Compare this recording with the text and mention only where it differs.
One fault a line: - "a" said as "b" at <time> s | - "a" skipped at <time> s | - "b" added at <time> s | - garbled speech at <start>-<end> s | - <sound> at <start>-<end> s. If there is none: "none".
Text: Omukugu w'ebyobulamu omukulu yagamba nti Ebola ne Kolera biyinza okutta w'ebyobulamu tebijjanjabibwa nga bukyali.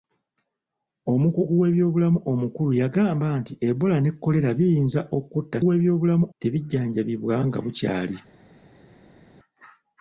none